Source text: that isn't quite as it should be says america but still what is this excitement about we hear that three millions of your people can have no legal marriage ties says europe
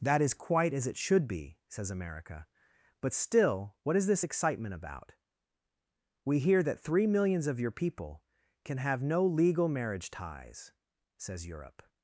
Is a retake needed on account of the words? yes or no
yes